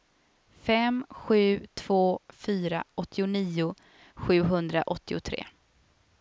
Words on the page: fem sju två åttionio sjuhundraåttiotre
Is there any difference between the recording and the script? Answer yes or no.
yes